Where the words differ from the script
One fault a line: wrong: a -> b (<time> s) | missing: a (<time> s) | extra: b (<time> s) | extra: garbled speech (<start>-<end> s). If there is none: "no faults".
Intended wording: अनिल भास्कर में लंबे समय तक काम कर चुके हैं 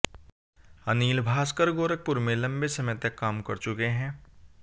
extra: गोरखपुर (1.7 s)